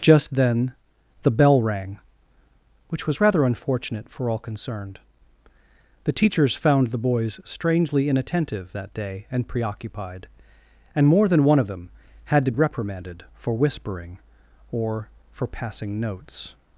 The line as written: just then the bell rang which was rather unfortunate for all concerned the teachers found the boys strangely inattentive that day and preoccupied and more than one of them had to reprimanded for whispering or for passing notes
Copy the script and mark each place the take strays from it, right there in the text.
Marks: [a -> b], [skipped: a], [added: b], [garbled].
just then the bell rang which was rather unfortunate for all concerned the teachers found the boys strangely inattentive that day and preoccupied and more than one of them had to reprimanded for whispering or for passing notes